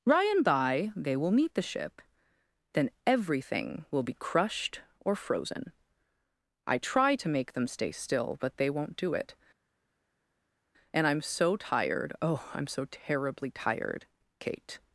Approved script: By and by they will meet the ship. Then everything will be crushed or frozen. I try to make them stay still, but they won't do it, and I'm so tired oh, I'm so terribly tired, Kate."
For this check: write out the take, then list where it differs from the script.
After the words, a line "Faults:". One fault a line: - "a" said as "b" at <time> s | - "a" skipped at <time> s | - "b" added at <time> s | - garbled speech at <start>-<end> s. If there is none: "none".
By and by they will meet the ship. Then everything will be crushed or frozen. I try to make them stay still, but they won't do it, and I'm so tired oh, I'm so terribly tired, Kate."
Faults:
none